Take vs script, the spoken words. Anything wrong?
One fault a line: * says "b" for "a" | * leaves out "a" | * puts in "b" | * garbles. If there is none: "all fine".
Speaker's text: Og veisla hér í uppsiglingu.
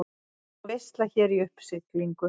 all fine